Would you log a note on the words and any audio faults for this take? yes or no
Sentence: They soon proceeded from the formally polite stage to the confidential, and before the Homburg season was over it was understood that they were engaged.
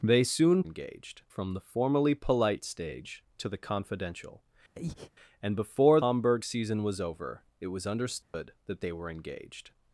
yes